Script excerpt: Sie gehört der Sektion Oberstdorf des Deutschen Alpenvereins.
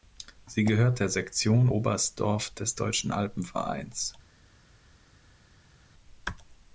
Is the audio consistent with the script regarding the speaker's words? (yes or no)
yes